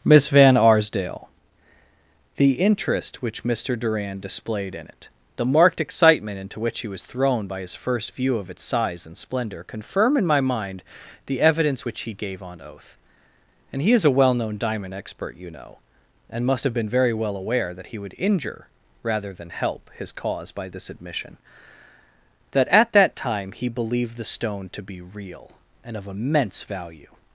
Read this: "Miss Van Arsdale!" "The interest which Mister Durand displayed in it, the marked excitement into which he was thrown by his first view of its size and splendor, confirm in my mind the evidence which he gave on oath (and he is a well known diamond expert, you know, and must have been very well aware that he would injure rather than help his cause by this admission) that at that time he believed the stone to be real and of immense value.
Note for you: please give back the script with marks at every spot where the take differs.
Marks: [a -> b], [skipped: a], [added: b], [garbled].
"Miss Van Arsdale!" "The interest which Mister Durand displayed in it, the marked excitement into which he was thrown by his first view of its size and splendor, confirm in my mind the evidence which he gave on oath (and he is a well known diamond expert, you know, and must have been very well aware that he would injure rather than help his cause by this admission) that at that time he believed the stone to be real and of immense value.